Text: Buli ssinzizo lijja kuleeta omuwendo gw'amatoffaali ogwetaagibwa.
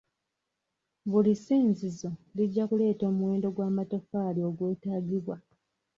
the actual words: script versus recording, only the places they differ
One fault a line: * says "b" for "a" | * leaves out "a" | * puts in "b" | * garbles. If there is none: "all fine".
all fine